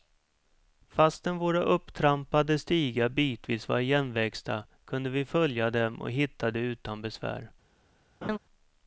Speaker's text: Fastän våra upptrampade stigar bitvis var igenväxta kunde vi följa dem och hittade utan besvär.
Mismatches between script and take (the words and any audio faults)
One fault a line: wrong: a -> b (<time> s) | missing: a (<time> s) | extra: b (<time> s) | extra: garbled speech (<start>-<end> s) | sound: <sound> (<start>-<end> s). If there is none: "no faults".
sound: laugh (8.2-8.4 s)